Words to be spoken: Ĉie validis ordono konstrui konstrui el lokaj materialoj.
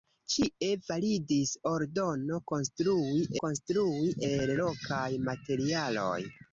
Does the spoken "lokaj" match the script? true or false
true